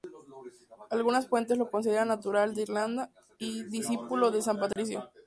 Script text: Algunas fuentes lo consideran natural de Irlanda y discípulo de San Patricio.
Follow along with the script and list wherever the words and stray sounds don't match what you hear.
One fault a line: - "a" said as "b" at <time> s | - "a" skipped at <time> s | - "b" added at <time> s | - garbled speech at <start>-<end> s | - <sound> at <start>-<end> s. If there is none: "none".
- dropout at 4.7-4.8 s